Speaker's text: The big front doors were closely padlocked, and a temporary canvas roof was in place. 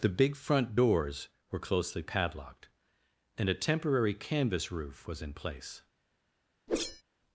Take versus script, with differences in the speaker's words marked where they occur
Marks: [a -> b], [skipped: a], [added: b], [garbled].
The big front doors were closely padlocked, and a temporary canvas roof was in place.